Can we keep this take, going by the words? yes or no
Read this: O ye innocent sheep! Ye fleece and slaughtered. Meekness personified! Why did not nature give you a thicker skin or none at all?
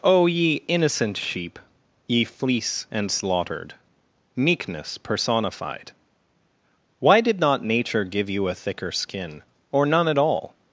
yes